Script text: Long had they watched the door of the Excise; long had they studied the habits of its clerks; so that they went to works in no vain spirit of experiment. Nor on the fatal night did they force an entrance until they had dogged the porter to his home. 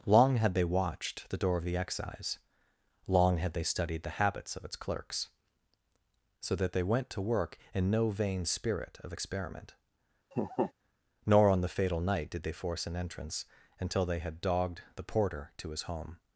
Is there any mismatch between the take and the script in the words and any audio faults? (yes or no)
yes